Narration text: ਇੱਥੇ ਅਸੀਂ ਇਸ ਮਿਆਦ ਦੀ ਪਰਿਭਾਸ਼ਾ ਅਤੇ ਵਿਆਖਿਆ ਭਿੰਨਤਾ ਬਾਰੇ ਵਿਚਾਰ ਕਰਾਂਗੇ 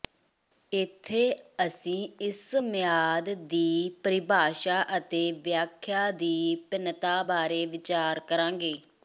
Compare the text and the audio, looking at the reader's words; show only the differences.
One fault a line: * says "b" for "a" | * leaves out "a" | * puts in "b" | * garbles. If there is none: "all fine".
* puts in "ਦੀ"